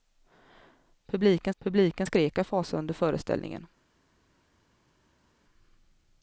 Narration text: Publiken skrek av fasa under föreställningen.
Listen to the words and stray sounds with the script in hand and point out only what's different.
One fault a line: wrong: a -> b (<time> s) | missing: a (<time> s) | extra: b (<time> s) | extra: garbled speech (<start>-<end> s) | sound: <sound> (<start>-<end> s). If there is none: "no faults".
extra: publiken (1.6 s)